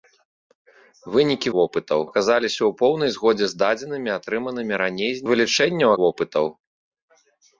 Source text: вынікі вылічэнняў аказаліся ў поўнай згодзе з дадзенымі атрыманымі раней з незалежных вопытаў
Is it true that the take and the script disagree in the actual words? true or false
true